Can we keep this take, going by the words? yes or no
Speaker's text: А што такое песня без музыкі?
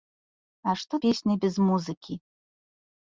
no